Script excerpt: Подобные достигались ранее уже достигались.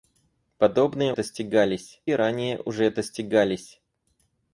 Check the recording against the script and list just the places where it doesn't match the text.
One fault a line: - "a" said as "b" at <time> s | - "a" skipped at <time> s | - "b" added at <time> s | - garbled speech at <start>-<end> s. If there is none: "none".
none